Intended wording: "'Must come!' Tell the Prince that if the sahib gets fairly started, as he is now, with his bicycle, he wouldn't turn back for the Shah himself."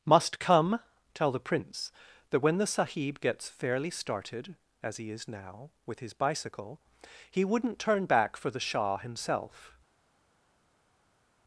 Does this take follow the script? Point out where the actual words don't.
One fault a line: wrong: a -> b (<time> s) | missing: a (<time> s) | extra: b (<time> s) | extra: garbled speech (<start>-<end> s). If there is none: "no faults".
wrong: if -> when (2.4 s)